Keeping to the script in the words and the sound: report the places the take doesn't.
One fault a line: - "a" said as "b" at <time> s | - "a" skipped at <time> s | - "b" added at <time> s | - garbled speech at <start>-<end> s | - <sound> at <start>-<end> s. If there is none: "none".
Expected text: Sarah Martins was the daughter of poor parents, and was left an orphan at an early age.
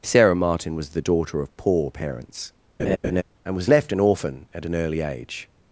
- "Martins" said as "Martin" at 0.3 s
- laugh at 2.8-3.2 s